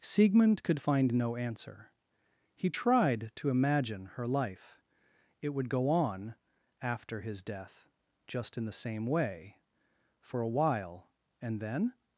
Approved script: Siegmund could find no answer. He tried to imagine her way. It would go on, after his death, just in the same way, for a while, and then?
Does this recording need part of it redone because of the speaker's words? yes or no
yes